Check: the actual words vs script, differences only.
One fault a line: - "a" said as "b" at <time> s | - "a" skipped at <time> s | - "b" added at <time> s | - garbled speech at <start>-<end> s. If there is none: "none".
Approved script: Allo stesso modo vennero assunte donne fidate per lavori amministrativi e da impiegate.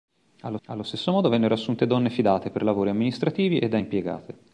- "allo" added at 0.7 s